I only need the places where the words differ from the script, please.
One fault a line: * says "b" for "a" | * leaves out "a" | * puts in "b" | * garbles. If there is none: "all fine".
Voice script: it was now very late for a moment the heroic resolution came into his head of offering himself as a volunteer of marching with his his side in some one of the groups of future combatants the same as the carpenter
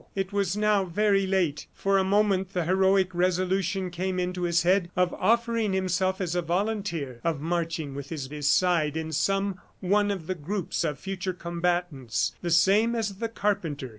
all fine